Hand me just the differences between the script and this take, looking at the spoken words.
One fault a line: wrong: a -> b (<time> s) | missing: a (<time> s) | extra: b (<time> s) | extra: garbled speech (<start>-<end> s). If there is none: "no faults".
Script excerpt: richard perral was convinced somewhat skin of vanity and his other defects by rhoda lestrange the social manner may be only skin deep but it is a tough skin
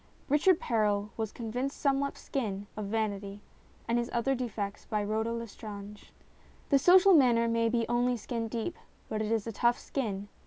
no faults